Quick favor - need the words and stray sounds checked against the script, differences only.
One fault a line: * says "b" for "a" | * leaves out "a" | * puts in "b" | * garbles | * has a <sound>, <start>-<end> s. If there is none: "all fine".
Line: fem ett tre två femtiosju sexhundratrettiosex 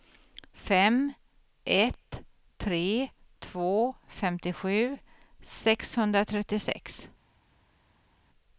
all fine